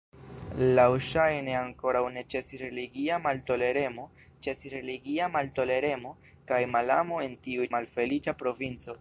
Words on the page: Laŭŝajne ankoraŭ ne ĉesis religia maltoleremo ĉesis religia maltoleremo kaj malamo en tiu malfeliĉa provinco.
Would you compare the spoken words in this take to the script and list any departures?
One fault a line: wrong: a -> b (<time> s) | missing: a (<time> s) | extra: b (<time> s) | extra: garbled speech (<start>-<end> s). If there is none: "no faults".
no faults